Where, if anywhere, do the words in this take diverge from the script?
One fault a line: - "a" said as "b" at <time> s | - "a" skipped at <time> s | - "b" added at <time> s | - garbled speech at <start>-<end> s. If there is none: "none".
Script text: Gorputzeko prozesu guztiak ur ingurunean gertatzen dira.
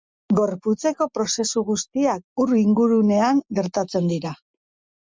none